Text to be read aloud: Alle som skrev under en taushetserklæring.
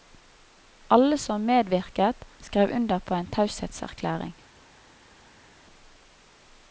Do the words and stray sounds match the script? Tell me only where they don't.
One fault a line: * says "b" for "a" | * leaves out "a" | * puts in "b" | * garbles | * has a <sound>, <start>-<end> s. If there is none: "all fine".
* puts in "medvirket"
* puts in "på"